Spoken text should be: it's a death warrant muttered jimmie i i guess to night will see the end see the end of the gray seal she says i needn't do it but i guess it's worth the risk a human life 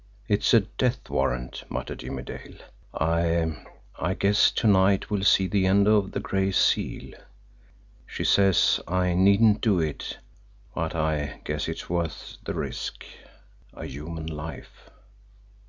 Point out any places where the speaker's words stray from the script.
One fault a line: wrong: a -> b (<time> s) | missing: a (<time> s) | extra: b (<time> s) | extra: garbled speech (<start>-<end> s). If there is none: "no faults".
extra: dale (2.2 s)
missing: see the end (5.9 s)